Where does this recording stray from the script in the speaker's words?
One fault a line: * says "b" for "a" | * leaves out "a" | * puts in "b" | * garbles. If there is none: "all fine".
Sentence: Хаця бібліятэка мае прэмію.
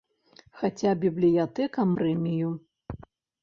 * leaves out "мае"